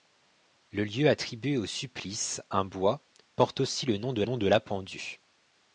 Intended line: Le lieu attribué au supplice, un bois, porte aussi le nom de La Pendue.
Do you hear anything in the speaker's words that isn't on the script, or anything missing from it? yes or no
yes